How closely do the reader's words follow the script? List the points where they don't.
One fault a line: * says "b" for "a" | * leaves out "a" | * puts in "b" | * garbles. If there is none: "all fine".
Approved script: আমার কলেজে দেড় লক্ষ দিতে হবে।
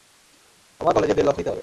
all fine